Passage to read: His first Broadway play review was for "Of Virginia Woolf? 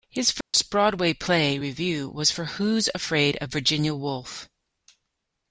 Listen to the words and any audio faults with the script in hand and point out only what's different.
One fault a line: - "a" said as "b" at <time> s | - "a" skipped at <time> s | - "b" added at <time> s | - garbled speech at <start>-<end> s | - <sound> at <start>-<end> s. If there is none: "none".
- dropout at 0.4-0.5 s
- "Who's Afraid" added at 2.4 s